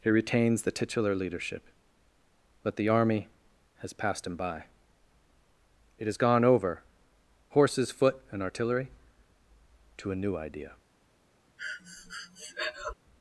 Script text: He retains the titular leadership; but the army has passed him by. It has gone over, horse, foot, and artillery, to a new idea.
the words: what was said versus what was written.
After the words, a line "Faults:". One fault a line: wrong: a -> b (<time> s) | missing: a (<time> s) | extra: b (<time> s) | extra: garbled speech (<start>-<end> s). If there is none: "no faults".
He retains the titular leadership; but the army has passed him by. It has gone over, horses, foot, and artillery, to a new idea.
Faults:
wrong: horse -> horses (7.5 s)